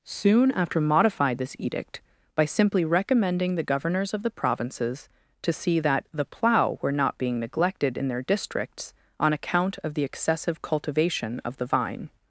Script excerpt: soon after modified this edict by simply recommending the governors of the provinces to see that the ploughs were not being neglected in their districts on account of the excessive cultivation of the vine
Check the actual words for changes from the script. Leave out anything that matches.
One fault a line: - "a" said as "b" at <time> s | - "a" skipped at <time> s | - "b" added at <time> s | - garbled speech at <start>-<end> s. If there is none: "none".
- "ploughs" said as "plough" at 6.2 s